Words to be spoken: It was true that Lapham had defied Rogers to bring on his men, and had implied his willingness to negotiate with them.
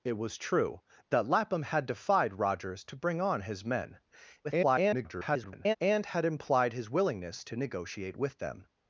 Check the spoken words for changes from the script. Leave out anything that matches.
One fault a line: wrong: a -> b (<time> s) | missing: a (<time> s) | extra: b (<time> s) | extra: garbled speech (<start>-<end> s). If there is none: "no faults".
extra: garbled speech (4.4-5.8 s)